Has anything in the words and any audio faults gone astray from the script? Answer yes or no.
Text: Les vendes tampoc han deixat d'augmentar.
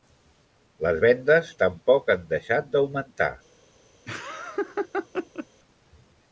yes